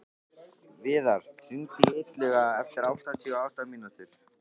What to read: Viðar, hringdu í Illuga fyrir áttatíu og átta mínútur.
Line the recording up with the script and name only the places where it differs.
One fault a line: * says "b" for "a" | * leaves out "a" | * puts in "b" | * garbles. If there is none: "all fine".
* says "eftir" for "fyrir"